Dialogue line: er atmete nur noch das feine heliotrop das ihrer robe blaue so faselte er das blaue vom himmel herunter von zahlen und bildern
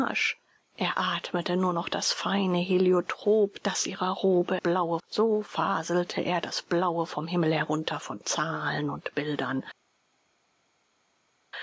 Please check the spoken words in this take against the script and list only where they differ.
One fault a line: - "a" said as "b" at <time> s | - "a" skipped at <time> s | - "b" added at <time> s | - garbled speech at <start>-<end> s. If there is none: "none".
none